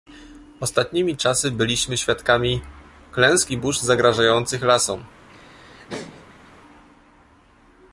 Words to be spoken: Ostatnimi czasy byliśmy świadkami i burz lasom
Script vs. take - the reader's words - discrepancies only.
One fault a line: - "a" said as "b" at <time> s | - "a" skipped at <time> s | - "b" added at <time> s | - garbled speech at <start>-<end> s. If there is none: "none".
- "klęsk" added at 3.1 s
- "zagrażających" added at 3.8 s